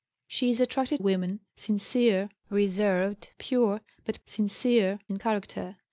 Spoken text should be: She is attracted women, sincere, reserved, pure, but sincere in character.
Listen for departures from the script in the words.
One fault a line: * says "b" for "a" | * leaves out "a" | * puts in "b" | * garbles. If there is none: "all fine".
all fine